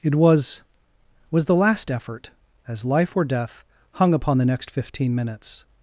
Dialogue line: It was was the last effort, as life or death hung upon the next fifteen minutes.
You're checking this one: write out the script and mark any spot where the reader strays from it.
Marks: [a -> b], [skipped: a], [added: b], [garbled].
It was was the last effort, as life or death hung upon the next fifteen minutes.